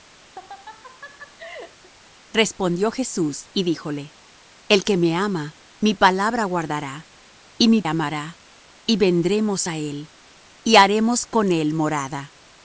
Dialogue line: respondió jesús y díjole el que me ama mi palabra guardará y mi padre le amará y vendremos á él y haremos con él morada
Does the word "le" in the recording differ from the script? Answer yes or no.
yes